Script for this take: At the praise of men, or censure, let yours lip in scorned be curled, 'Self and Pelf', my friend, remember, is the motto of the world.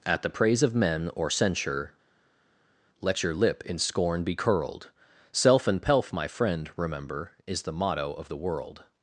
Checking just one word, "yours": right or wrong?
wrong